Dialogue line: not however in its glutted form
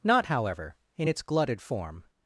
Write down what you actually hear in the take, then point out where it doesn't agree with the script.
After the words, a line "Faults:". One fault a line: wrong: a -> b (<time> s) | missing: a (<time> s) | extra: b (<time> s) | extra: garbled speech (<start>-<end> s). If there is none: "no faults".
not however in its glutted form
Faults:
no faults